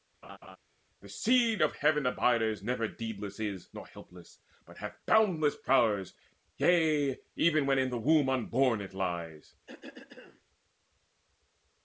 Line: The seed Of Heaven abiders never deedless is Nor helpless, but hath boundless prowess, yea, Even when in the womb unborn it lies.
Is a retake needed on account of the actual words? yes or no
no